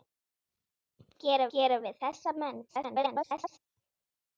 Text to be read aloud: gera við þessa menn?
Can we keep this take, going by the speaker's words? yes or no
no